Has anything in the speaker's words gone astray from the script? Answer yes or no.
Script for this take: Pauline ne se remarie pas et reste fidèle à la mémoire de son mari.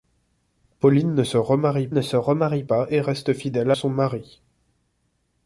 yes